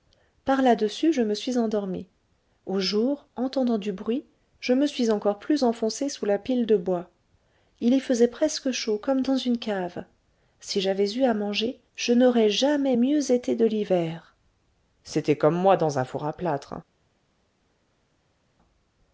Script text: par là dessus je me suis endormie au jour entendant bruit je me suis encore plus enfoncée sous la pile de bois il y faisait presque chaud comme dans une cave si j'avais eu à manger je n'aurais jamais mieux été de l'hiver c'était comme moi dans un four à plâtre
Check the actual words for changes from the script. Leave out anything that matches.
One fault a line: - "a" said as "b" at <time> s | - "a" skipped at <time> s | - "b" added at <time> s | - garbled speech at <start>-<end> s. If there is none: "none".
- "du" added at 3.8 s